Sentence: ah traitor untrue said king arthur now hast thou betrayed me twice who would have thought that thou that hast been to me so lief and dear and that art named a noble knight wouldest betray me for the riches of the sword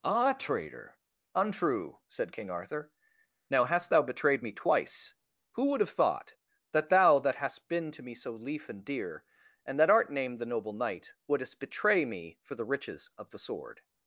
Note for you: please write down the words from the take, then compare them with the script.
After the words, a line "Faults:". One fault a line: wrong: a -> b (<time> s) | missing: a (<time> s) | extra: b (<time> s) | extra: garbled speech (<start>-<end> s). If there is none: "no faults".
ah traitor untrue said king arthur now hast thou betrayed me twice who would have thought that thou that hast been to me so lief and dear and that art named the noble knight wouldest betray me for the riches of the sword
Faults:
wrong: a -> the (10.4 s)